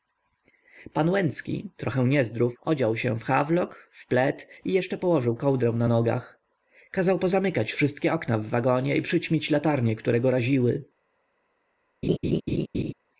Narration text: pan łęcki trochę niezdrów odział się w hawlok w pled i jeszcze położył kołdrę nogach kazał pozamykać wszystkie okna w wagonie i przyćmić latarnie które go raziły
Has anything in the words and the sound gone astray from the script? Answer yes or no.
yes